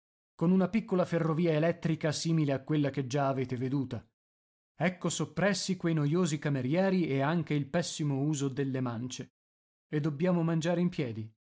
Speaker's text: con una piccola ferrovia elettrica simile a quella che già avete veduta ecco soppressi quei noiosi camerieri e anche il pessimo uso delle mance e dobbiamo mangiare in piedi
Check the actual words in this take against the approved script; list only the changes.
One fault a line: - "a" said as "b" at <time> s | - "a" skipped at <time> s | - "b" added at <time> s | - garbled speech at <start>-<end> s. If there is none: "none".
none